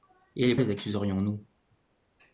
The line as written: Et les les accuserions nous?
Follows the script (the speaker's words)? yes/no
yes